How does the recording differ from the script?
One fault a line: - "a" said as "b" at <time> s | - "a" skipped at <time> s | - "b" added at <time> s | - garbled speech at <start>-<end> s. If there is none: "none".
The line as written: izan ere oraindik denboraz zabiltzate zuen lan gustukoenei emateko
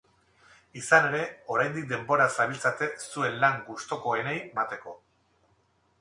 none